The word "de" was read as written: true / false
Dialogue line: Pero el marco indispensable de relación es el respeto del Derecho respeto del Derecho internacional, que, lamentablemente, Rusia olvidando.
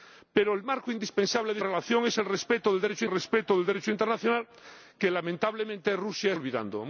true